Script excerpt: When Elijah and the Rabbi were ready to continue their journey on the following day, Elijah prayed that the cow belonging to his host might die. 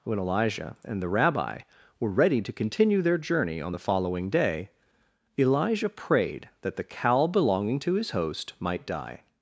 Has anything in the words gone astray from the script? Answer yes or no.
no